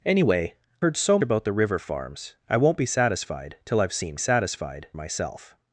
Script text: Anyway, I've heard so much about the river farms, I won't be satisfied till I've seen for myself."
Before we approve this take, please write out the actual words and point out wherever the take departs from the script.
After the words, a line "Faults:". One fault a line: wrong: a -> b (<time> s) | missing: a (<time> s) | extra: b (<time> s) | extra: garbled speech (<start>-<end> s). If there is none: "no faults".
Anyway, Heard so about the river farms, I won't be satisfied till I've seen satisfied myself."
Faults:
missing: I've (0.6 s)
missing: much (1.2 s)
wrong: for -> satisfied (4.2 s)